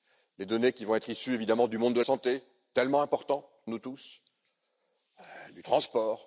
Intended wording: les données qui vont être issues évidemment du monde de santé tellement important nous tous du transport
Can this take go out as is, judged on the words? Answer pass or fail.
pass